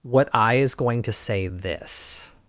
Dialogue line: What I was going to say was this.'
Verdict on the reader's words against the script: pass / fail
fail